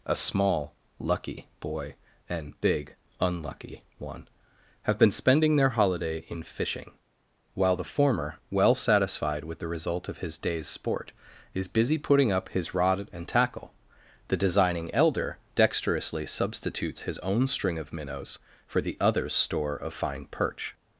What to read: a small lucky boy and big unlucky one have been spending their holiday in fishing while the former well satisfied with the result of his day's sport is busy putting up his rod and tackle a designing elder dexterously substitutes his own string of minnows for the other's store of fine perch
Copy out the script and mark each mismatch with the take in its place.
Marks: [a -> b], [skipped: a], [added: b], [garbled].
a small lucky boy and big unlucky one have been spending their holiday in fishing while the former well satisfied with the result of his day's sport is busy putting up his rod and tackle [a -> the] designing elder dexterously substitutes his own string of minnows for the other's store of fine perch